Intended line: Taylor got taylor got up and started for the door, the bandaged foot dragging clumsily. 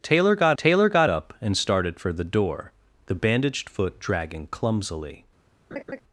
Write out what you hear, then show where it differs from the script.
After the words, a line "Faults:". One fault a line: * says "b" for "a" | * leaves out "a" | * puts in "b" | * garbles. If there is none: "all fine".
Taylor got taylor got up and started for the door, the bandaged foot dragging clumsily.
Faults:
all fine